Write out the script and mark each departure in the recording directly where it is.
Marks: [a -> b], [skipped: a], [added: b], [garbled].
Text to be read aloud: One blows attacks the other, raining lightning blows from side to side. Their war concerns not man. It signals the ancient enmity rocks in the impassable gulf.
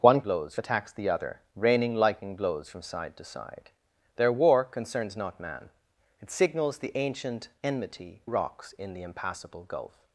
One blows attacks the other, raining lightning blows from side to side. Their war concerns not man. It signals the ancient enmity rocks in the impassable gulf.